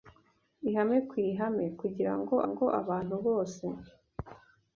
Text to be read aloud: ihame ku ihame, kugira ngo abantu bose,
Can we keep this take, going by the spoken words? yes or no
no